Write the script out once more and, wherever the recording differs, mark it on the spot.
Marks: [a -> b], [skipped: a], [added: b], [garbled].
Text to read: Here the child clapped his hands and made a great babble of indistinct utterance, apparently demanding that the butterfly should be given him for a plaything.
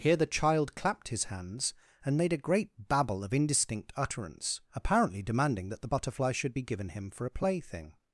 Here the child clapped his hands and made a great babble of indistinct utterance, apparently demanding that the butterfly should be given him for a plaything.